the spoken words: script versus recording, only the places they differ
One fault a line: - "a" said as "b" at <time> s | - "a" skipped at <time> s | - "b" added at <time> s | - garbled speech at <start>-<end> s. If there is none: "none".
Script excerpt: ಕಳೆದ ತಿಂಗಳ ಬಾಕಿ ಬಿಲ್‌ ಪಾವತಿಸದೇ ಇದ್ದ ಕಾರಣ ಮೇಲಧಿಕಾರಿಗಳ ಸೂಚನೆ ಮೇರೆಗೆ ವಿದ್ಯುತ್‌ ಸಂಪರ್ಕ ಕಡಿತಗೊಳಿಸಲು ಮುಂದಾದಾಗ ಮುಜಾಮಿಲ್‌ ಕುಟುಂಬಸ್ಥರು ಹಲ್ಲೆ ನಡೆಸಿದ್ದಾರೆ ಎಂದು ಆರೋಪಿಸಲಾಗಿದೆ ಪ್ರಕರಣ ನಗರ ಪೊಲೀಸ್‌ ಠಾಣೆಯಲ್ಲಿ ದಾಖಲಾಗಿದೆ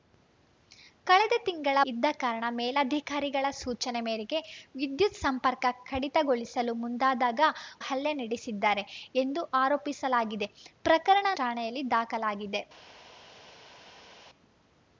- "ಬಾಕಿ ಬಿಲ್ ಪಾವತಿಸದೇ" skipped at 1.8 s
- "ಮುಜಾಮಿಲ್ ಕುಟುಂಬಸ್ಥರು" skipped at 7.4 s
- "ನಗರ ಪೊಲೀಸ್" skipped at 11.3 s